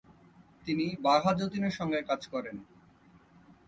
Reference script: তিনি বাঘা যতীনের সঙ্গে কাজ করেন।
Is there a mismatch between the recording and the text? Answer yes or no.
no